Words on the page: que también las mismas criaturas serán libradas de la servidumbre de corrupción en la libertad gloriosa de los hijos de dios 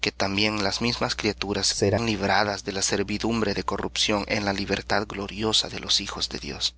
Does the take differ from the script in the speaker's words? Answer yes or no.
no